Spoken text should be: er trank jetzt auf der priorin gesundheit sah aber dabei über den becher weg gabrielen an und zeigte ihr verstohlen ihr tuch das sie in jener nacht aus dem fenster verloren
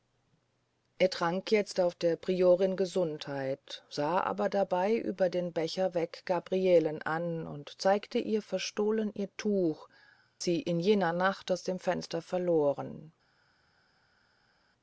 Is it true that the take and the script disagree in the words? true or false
true